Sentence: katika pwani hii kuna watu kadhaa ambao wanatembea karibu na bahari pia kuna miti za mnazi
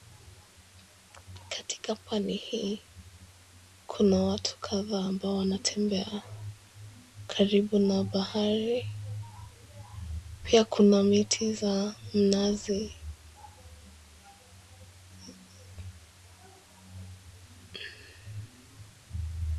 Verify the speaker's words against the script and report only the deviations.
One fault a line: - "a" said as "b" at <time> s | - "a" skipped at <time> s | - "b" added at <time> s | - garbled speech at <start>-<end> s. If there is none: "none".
none